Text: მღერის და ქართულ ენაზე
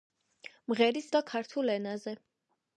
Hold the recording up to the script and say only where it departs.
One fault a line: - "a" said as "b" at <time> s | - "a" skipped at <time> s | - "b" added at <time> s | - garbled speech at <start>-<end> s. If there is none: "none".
none